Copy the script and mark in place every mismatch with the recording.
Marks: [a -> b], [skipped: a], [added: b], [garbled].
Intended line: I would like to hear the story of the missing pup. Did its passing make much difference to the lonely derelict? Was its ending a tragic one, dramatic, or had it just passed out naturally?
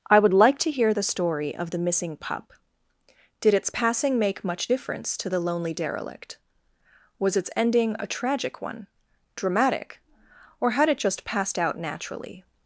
I would like to hear the story of the missing pup. Did its passing make much difference to the lonely derelict? Was its ending a tragic one, dramatic, or had it just passed out naturally?